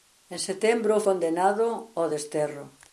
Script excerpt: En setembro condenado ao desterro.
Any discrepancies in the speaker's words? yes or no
no